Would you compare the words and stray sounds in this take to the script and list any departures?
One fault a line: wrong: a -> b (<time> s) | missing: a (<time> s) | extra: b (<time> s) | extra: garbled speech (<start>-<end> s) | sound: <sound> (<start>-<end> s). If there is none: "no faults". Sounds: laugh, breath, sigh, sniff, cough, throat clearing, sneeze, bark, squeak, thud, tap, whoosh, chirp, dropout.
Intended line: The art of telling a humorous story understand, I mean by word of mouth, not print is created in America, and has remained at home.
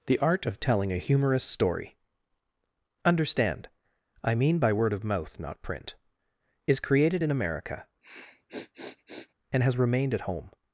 sound: sniff (8.0-9.3 s)